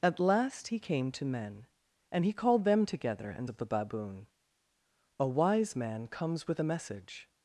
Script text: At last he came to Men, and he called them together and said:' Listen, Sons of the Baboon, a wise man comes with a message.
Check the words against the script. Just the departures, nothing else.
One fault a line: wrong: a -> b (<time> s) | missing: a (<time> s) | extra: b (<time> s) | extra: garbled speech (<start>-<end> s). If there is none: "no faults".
missing: said Listen Sons (3.5 s)